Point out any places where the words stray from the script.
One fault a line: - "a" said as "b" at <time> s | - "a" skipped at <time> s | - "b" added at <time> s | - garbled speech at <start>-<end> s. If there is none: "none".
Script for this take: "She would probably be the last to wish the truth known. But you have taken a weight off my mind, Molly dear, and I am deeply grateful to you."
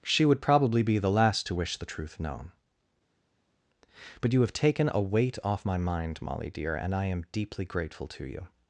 none